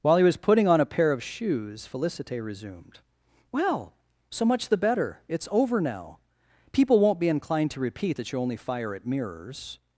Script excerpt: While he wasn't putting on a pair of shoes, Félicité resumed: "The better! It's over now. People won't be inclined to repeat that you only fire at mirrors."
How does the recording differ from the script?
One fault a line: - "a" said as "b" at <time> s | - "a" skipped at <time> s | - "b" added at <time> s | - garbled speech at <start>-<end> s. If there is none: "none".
- "wasn't" said as "was" at 0.2 s
- "Well so much" added at 3.5 s